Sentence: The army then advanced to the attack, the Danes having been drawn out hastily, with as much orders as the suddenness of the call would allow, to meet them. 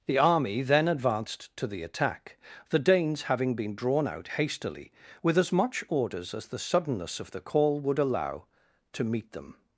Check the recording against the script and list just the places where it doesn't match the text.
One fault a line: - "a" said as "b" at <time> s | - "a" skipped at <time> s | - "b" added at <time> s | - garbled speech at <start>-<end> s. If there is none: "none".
none